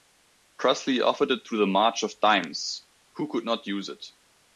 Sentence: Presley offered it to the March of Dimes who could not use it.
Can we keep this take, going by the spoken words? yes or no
yes